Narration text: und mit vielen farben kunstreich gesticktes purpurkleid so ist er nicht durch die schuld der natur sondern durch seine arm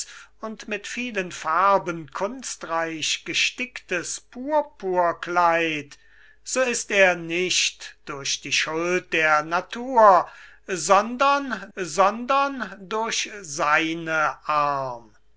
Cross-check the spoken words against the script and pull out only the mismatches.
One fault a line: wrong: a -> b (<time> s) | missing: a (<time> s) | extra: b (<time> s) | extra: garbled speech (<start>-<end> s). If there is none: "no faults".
extra: sondern (11.7 s)